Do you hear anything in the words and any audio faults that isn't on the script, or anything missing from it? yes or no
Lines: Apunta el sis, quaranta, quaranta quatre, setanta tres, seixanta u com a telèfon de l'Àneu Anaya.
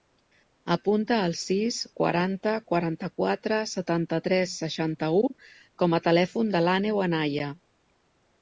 no